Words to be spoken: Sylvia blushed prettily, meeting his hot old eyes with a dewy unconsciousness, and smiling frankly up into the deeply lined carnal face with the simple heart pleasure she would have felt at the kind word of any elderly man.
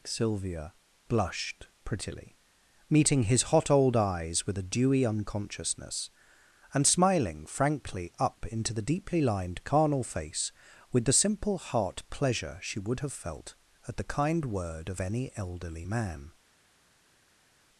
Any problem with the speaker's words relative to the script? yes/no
no